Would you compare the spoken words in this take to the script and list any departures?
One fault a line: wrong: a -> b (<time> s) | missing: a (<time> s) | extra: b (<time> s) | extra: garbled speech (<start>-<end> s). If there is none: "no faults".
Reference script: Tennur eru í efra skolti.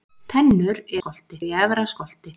wrong: eru -> skolti (1.0 s)